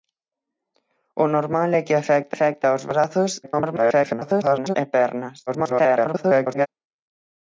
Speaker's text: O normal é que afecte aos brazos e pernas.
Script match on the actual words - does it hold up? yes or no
no